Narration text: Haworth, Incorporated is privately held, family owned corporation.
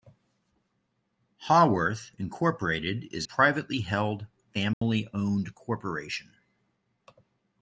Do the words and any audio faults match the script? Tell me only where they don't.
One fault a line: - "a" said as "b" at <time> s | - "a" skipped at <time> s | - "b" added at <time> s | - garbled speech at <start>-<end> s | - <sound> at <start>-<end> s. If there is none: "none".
- dropout at 4.7-4.8 s